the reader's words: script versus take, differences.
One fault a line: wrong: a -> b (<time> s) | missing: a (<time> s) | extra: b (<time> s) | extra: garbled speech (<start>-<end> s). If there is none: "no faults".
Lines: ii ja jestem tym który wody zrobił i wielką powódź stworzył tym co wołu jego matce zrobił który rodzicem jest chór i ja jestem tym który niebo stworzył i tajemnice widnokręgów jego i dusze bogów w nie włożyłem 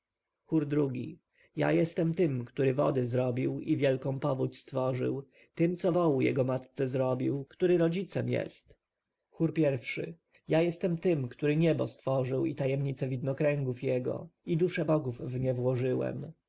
no faults